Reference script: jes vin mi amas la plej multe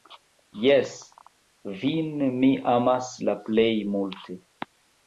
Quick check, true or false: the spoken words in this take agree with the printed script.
true